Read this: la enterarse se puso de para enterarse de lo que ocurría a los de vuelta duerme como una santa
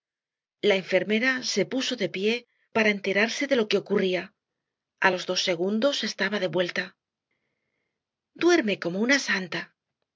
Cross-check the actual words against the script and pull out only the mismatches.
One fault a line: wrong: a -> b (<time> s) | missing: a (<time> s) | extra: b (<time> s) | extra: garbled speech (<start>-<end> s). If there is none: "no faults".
wrong: enterarse -> enfermera (0.8 s)
extra: pié (2.1 s)
extra: dos segundos estaba (5.3 s)